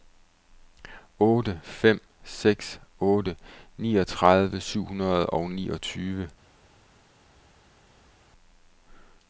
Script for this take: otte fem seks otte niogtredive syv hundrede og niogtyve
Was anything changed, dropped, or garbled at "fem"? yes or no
no